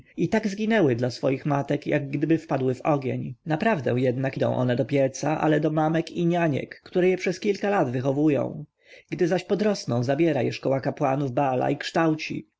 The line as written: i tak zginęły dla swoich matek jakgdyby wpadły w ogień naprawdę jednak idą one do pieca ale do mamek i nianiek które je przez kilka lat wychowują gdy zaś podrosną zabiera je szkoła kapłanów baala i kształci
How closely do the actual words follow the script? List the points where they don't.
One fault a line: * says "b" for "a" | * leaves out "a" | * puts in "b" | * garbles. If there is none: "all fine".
all fine